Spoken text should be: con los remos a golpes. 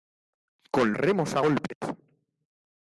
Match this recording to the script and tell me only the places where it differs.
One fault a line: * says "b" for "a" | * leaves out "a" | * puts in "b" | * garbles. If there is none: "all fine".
* leaves out "los"